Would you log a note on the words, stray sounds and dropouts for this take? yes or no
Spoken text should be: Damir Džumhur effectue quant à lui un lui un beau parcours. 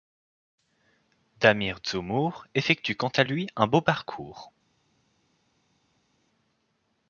yes